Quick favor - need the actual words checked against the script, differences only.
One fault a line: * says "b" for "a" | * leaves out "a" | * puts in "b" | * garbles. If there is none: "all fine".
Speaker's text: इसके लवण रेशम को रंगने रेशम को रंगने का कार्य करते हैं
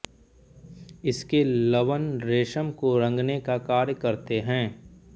* leaves out "रेशम को रंगने"